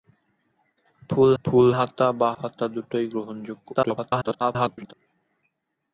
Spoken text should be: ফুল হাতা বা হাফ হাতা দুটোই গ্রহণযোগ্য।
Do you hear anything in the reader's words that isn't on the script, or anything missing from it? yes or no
yes